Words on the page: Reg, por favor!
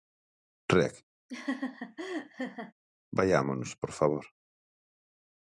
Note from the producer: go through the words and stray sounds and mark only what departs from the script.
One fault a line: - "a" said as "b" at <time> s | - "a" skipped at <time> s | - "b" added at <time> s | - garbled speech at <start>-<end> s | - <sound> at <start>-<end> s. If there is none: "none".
- laugh at 1.3-2.7 s
- "vaiámonos" added at 3.2 s